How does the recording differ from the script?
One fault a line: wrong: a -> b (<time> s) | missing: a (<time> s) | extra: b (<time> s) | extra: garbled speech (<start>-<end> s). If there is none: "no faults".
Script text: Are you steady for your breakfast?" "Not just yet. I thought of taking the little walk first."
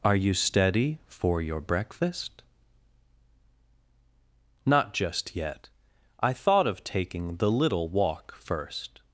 no faults